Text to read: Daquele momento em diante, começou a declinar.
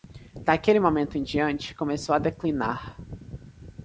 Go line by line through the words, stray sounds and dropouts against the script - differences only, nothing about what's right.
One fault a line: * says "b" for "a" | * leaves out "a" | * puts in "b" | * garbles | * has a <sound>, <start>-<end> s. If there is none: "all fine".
all fine